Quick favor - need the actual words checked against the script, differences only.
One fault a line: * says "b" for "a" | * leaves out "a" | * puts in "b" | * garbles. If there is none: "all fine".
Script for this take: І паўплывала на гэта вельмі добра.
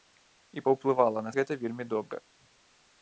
all fine